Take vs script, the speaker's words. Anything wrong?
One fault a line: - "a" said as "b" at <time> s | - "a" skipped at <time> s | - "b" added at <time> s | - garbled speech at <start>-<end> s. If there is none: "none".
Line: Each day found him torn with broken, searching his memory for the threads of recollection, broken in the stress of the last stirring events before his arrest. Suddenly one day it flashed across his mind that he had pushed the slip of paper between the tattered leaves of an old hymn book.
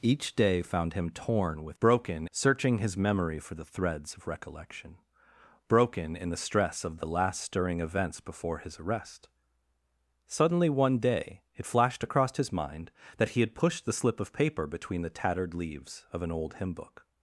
none